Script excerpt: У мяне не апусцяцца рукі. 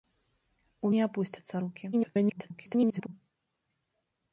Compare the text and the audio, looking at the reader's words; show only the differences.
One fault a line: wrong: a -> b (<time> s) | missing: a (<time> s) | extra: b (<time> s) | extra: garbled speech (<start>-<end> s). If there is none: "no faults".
missing: мяне (0.9 s)
extra: garbled speech (1.9-3.1 s)